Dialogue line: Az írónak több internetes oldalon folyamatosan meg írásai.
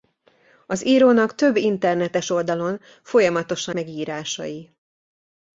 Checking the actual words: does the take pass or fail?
pass